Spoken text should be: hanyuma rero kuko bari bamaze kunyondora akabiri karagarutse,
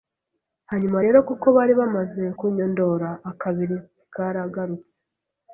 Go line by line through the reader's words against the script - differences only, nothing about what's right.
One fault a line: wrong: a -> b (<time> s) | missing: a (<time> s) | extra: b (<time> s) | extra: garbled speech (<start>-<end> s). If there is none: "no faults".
no faults